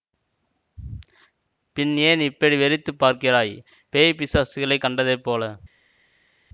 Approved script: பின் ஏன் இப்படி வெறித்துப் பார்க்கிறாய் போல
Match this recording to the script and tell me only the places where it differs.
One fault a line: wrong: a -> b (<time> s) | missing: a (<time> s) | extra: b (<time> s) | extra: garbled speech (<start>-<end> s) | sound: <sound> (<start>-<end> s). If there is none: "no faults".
extra: பேய் பிசாசுகளைக் கண்டதைப் (3.9 s)